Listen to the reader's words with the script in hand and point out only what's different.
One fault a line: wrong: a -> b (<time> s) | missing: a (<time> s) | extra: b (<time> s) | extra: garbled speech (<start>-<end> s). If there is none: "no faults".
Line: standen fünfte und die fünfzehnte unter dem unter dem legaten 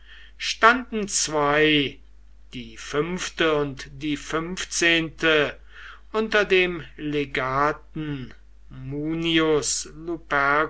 extra: zwei die (1.1 s)
missing: unter dem (6.8 s)